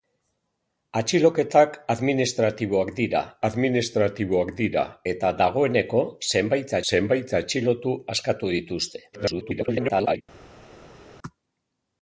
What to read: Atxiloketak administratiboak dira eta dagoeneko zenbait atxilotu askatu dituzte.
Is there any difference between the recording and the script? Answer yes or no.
yes